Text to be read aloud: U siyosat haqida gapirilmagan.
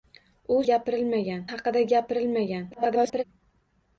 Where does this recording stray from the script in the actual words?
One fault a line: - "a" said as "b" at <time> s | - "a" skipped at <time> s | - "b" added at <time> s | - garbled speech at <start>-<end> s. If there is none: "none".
- "siyosat" said as "gapirilmagan" at 0.7 s
- garbled speech at 2.7-3.2 s